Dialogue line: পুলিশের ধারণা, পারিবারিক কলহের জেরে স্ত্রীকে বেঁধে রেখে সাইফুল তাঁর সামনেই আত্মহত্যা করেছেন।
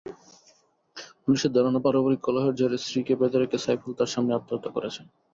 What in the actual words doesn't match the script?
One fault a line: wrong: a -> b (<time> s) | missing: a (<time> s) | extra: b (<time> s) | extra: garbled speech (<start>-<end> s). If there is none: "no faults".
no faults